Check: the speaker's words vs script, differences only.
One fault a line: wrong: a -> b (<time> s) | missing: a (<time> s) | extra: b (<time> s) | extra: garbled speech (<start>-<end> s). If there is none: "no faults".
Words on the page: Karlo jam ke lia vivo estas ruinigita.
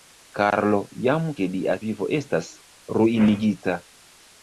no faults